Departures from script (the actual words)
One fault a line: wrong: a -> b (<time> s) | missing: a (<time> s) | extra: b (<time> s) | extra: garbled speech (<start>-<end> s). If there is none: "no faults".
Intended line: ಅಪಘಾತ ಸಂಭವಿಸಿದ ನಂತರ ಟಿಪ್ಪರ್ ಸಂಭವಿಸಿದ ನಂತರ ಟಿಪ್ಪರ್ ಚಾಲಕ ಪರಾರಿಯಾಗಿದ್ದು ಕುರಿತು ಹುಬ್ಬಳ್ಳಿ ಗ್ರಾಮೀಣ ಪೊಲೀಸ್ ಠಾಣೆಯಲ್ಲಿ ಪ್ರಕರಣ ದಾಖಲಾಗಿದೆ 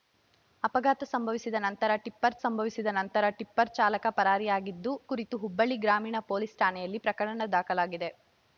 no faults